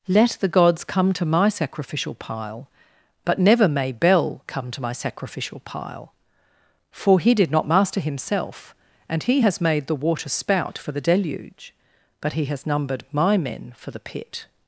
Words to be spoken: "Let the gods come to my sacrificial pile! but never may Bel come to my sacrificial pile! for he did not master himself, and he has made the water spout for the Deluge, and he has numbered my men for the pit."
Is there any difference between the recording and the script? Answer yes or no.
yes